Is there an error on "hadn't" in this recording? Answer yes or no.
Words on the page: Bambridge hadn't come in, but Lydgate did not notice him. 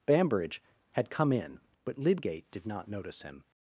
yes